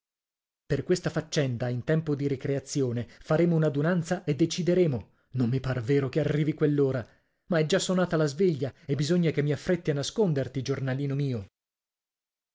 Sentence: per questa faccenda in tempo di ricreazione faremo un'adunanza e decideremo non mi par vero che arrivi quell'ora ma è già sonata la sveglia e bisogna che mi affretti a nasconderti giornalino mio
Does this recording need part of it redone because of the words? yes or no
no